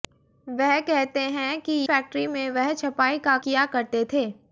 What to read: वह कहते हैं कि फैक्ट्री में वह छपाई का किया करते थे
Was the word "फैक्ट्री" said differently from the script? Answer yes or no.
no